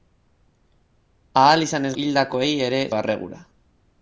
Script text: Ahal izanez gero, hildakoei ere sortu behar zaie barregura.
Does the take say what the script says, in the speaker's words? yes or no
no